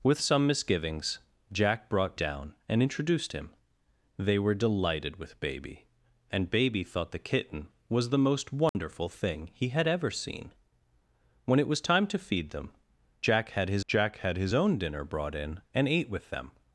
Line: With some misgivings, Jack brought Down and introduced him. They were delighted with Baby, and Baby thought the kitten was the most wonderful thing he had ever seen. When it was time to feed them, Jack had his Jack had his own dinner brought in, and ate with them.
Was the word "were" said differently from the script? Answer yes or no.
no